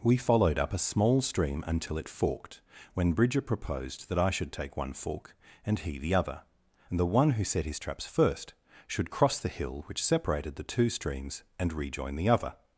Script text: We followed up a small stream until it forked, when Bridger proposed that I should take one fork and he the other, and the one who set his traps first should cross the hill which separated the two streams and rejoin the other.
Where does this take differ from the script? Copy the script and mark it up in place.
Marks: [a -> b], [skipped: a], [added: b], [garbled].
We followed up a small stream until it forked, when Bridger proposed that I should take one fork and he the other, and the one who set his traps first should cross the hill which separated the two streams and rejoin the other.